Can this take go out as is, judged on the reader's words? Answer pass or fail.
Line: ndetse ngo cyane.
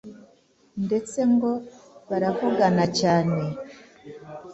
fail